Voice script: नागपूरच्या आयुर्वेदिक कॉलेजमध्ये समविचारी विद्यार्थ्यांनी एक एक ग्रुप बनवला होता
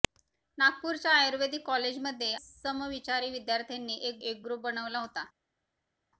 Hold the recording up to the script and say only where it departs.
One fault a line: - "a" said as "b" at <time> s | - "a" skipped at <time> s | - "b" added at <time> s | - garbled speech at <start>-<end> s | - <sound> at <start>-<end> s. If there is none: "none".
none